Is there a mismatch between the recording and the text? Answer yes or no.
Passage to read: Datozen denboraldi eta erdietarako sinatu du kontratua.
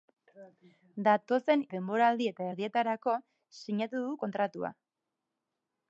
no